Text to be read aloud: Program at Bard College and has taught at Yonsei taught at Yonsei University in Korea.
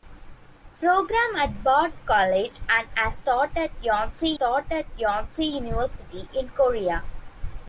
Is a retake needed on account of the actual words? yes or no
no